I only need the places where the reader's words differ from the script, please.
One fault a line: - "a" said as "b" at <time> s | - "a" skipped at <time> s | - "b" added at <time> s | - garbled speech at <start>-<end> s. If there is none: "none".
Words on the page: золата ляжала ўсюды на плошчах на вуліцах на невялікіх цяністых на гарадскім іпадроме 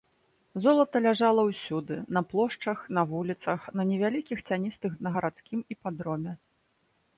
none